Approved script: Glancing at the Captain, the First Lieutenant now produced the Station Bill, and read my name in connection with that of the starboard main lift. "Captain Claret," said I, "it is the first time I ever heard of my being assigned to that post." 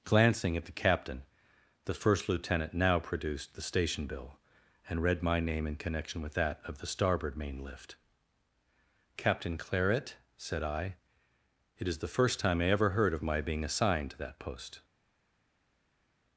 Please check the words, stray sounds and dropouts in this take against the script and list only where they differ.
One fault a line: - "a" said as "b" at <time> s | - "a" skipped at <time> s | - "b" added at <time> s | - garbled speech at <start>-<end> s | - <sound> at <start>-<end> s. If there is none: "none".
none